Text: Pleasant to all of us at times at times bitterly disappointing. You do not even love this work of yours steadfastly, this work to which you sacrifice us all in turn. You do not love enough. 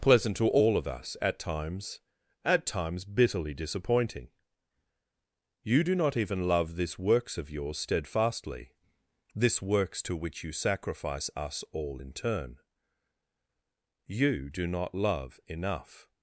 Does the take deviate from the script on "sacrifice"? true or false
false